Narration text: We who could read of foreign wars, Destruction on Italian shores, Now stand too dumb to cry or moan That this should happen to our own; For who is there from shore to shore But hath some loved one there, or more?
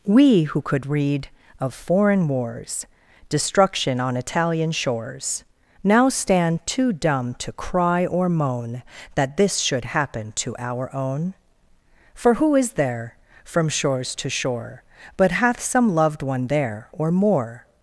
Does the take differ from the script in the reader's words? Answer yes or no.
yes